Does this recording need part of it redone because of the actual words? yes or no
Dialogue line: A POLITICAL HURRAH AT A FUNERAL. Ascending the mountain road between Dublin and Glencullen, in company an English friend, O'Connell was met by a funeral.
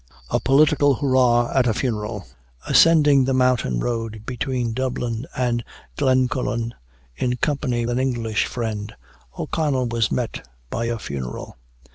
no